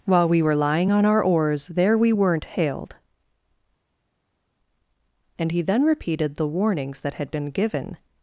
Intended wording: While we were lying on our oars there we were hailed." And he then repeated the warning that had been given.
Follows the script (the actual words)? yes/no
no